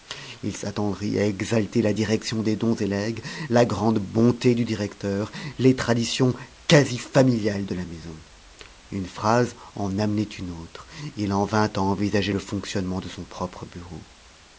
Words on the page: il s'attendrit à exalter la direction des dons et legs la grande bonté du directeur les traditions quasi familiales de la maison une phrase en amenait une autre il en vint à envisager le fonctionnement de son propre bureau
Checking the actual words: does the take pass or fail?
pass